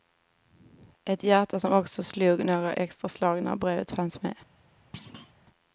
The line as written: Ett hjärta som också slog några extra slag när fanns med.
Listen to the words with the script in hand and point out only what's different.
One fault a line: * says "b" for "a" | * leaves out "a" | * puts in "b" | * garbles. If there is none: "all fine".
* puts in "brevet"